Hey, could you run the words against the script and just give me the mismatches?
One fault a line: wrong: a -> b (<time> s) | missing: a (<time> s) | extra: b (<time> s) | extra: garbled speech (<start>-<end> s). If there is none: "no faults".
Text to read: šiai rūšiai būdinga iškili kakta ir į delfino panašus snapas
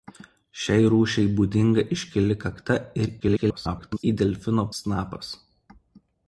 extra: garbled speech (3.2-4.0 s)
missing: panašus (4.7 s)